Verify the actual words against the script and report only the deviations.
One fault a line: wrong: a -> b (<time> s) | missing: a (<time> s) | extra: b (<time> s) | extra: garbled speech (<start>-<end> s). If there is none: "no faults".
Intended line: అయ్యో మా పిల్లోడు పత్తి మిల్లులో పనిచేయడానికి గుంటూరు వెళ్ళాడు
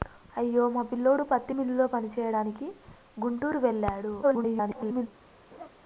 extra: garbled speech (4.2-5.1 s)